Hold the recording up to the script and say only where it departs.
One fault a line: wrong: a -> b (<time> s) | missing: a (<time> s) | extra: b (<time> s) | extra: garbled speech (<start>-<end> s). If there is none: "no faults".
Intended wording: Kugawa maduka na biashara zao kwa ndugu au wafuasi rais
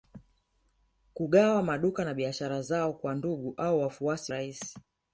no faults